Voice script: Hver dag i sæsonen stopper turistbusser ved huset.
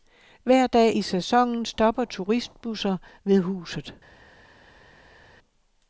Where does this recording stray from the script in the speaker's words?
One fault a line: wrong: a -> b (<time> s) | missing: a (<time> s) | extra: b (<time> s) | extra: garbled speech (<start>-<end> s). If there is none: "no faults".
no faults